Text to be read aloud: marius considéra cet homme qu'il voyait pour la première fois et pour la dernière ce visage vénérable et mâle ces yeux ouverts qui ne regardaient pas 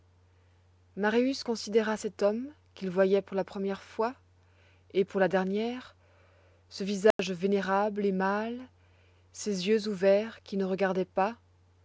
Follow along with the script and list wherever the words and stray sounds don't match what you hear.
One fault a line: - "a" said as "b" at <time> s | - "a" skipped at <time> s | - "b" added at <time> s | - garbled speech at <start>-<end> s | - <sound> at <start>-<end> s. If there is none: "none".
- dropout at 7.1-7.2 s